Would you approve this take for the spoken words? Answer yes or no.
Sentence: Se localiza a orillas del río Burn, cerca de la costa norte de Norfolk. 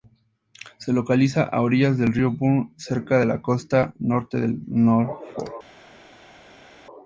yes